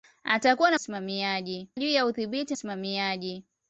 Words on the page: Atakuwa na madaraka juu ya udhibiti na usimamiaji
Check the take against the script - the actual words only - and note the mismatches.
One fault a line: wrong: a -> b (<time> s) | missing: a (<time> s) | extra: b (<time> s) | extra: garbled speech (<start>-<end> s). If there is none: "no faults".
wrong: madaraka -> usimamiaji (0.7 s)
missing: na (2.5 s)